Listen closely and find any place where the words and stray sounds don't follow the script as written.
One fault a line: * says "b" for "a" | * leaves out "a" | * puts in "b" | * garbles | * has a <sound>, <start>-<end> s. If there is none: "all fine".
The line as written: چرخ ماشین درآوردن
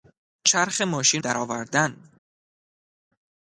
all fine